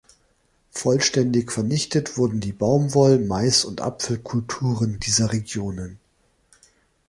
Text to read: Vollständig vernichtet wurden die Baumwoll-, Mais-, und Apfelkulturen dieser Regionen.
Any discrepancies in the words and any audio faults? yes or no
no